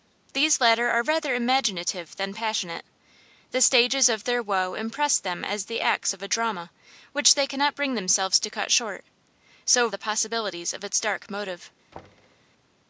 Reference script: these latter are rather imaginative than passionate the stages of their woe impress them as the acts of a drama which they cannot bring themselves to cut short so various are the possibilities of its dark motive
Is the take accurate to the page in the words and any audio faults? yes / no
no